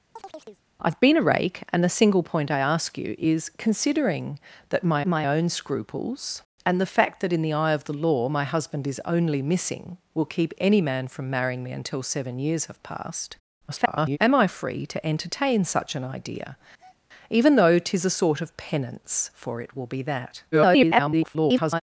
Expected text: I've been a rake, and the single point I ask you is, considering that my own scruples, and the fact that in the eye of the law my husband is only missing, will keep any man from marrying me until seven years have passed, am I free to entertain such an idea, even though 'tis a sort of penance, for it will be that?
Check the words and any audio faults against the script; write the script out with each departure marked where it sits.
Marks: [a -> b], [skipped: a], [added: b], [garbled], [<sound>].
[chirp] I've been a rake, and the single point I ask you is, considering that my [added: my] own scruples, and the fact that in the eye of the law my husband is only missing, will keep any man from marrying me until seven years have passed, [garbled] am I free to entertain such an idea, [breath] even though 'tis a sort of penance, for it will be that? [garbled]